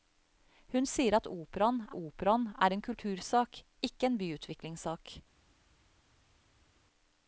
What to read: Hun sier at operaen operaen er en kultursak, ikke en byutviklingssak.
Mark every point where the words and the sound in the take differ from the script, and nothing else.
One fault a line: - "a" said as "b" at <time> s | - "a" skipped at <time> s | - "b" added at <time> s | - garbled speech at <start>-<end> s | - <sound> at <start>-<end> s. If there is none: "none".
none